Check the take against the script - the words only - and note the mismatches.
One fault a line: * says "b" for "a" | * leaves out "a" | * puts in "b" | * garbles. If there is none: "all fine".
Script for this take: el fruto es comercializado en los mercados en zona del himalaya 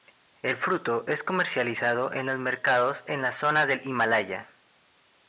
* puts in "la"